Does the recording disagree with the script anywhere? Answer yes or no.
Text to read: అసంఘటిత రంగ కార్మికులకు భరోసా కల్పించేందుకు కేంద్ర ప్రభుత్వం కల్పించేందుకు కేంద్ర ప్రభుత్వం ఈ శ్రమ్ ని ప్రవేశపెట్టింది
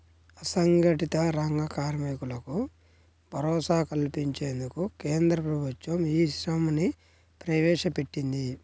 yes